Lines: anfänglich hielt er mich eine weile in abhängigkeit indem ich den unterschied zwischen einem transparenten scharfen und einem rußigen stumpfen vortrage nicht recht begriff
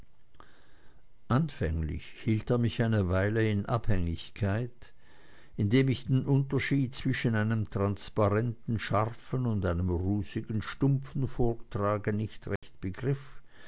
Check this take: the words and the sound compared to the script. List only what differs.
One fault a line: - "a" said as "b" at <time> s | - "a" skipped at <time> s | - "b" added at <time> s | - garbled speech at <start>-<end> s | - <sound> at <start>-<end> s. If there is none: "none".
- dropout at 12.6-12.6 s